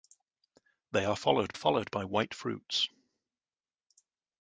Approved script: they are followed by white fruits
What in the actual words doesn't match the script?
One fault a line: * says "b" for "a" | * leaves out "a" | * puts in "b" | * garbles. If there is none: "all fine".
* puts in "followed"